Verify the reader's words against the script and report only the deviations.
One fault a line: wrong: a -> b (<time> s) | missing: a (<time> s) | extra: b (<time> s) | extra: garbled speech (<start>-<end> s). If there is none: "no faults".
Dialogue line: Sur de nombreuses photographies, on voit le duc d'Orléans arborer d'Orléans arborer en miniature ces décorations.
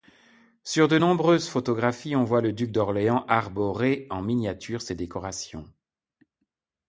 missing: d'Orléans arborer (4.1 s)